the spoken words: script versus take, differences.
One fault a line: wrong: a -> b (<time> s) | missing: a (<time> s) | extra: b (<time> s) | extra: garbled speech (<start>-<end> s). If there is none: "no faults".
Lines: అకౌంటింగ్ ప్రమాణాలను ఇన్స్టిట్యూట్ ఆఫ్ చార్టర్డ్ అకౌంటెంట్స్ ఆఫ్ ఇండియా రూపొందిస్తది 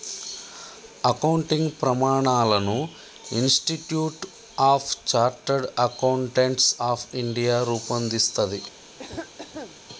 no faults